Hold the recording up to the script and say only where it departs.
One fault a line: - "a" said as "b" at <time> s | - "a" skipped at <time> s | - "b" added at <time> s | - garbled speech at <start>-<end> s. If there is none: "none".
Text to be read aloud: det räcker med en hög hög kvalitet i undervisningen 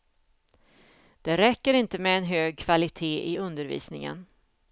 - "inte" added at 1.7 s
- "hög" skipped at 2.6 s